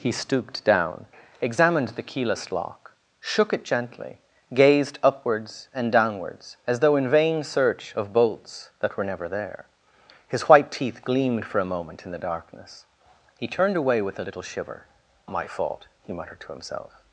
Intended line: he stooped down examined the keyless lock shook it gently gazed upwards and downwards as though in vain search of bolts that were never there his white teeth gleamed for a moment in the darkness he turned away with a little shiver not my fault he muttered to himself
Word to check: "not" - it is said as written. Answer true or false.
false